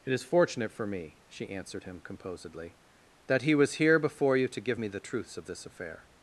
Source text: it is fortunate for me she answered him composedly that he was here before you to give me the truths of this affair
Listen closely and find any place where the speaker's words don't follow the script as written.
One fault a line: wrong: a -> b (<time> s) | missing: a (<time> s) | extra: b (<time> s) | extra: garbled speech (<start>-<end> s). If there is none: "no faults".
no faults